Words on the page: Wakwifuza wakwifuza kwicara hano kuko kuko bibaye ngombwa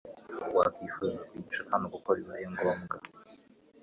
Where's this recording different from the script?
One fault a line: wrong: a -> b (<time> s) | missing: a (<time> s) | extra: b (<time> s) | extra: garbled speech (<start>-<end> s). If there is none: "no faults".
missing: wakwifuza (1.2 s)
missing: kuko (2.1 s)